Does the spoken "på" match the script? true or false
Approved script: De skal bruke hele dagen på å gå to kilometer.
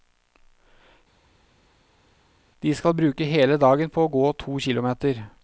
true